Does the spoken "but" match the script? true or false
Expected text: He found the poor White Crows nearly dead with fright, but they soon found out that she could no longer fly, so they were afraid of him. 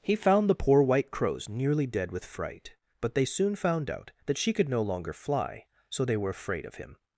true